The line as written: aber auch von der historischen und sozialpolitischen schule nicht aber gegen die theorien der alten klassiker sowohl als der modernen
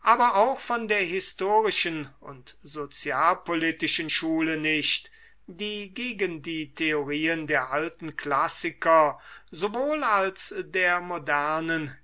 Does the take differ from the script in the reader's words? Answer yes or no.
yes